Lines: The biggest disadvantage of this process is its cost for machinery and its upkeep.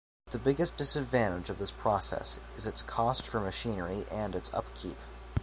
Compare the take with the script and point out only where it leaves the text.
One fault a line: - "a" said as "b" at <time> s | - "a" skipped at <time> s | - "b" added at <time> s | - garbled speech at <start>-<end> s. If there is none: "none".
none